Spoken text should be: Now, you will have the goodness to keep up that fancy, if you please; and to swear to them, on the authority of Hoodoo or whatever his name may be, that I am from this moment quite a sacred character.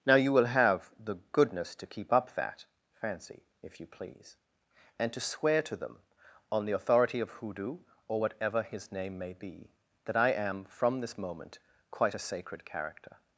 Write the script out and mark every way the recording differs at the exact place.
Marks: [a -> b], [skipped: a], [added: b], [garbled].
Now, you will have the goodness to keep up that fancy, if you please; and to swear to them, on the authority of Hoodoo or whatever his name may be, that I am from this moment quite a sacred character.